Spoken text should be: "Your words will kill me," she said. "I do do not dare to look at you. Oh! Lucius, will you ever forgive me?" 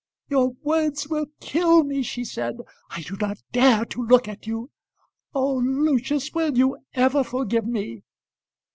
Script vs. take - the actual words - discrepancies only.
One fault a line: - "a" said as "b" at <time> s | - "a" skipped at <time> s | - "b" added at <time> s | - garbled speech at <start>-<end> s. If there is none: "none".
- "do" skipped at 3.1 s